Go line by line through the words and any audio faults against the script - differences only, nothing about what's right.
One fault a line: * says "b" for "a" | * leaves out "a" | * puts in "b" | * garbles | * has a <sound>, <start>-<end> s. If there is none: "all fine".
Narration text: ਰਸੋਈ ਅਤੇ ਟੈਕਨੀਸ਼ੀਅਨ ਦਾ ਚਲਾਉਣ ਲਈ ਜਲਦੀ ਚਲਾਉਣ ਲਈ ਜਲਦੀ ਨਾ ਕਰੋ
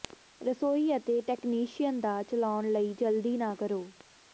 * leaves out "ਚਲਾਉਣ ਲਈ ਜਲਦੀ"